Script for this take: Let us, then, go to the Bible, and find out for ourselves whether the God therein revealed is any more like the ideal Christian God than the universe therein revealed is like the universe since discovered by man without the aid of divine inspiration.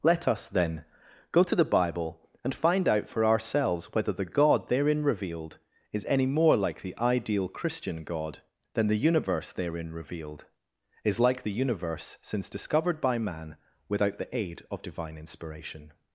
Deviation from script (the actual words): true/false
false